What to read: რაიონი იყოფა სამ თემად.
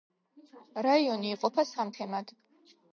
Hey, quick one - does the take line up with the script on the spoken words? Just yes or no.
yes